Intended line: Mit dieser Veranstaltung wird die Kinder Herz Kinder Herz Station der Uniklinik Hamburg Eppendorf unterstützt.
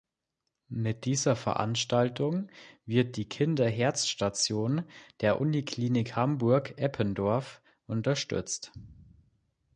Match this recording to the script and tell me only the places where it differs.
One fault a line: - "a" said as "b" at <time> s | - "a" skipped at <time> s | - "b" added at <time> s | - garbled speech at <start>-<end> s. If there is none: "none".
- "Kinder Herz" skipped at 4.1 s